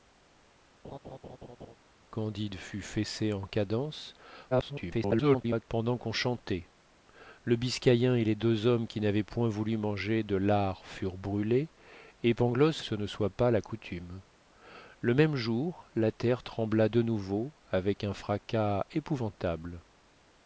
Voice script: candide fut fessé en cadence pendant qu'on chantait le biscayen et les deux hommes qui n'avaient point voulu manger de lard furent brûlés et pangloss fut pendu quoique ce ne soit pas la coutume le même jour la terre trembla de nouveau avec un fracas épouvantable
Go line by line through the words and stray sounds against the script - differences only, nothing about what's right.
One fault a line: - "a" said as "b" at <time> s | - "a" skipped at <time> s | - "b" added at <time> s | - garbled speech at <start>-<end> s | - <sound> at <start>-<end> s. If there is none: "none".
- laugh at 0.8-1.8 s
- garbled speech at 4.5-5.7 s
- "fut pendu quoique" skipped at 12.8 s